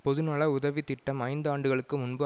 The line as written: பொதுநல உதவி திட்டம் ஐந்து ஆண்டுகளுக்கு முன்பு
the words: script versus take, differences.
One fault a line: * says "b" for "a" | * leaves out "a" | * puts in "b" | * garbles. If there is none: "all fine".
all fine